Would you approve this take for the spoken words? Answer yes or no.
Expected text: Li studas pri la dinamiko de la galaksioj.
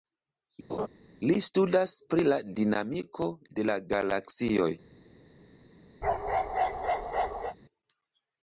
yes